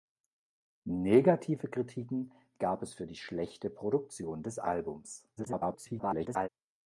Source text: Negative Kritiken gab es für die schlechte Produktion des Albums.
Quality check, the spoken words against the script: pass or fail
fail